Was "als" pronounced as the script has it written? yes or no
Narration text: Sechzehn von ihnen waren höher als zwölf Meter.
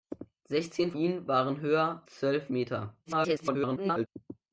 no